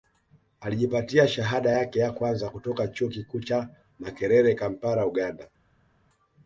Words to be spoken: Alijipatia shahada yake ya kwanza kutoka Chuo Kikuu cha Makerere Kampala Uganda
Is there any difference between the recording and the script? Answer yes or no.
no